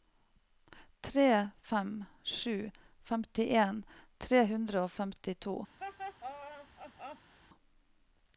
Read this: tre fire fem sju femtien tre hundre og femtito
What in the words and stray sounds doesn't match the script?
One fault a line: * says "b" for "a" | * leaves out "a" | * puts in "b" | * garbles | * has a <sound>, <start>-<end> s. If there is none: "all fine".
* leaves out "fire"
* has a laugh, 5.8-7.3 s